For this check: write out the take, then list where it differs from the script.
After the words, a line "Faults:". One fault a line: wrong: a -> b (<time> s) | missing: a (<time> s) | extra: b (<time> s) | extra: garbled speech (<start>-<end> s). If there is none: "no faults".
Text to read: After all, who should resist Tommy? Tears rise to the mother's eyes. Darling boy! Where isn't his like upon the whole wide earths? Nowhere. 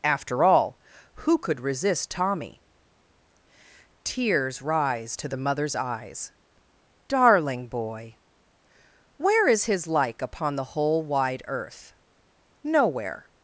After all, who could resist Tommy? Tears rise to the mother's eyes. Darling boy! Where is his like upon the whole wide earth? Nowhere.
Faults:
wrong: should -> could (1.4 s)
wrong: isn't -> is (9.5 s)
wrong: earths -> earth (11.5 s)